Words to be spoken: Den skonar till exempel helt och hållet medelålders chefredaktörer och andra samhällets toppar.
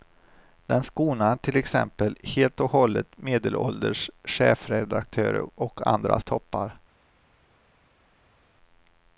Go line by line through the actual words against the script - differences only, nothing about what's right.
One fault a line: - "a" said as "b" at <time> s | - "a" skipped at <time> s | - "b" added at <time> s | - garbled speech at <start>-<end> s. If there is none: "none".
- "samhällets" skipped at 6.2 s